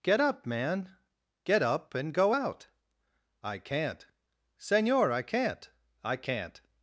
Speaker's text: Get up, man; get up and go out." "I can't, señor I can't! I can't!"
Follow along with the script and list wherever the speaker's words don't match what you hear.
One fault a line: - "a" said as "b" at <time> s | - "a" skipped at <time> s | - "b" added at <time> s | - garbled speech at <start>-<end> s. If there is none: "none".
none